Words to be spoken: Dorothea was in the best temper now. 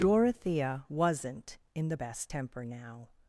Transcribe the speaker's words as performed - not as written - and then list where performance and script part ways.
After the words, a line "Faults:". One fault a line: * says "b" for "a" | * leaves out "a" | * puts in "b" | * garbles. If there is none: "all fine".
Dorothea wasn't in the best temper now.
Faults:
* says "wasn't" for "was"